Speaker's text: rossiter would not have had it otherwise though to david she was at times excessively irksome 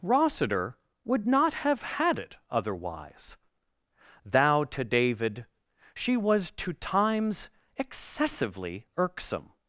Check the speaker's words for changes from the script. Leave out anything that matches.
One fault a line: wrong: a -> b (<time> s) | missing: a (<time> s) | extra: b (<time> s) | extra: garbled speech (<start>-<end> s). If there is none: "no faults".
wrong: though -> thou (4.3 s)
wrong: at -> to (6.5 s)